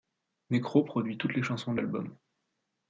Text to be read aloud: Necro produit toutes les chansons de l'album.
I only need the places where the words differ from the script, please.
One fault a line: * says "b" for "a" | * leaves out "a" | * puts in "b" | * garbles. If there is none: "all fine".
all fine